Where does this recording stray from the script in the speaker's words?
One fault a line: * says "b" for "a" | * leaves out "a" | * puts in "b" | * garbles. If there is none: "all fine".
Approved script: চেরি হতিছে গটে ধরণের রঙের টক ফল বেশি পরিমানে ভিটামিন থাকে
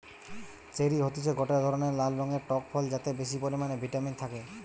* puts in "লাল"
* puts in "যাতে"